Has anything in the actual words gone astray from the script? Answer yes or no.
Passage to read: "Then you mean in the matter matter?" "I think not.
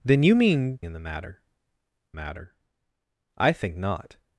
no